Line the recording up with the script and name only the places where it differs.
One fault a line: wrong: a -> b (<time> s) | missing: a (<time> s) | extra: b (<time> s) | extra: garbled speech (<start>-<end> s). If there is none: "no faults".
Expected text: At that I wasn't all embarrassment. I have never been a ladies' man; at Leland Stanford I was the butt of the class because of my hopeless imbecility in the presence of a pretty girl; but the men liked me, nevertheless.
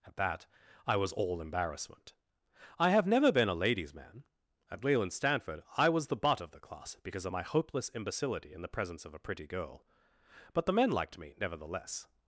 wrong: wasn't -> was (1.0 s)